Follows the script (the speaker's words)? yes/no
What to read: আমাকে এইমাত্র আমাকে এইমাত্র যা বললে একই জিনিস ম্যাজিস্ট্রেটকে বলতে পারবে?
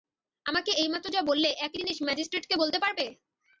no